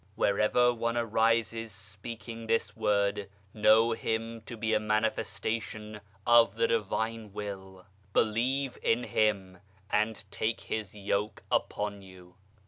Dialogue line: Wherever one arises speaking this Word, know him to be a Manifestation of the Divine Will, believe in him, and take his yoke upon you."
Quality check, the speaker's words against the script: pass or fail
pass